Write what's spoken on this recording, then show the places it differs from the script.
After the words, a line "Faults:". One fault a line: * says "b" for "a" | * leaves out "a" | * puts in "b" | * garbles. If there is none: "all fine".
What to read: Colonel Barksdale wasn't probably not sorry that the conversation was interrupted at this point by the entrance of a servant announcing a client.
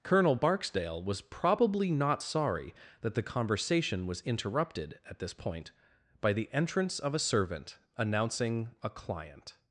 Colonel Barksdale was probably not sorry that the conversation was interrupted at this point by the entrance of a servant announcing a client.
Faults:
* says "was" for "wasn't"